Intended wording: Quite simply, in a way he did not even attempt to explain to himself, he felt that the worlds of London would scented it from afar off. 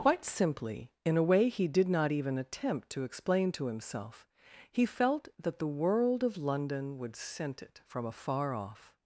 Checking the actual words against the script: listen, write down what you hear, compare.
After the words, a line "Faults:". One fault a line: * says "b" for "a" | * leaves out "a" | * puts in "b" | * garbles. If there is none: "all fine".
Quite simply, in a way he did not even attempt to explain to himself, he felt that the world of London would scent it from afar off.
Faults:
* says "world" for "worlds"
* says "scent" for "scented"